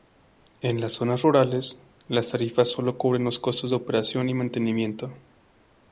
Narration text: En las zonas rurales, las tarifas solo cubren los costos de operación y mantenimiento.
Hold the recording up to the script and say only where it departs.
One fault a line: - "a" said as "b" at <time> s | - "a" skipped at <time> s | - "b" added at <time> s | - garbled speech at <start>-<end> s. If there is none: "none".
none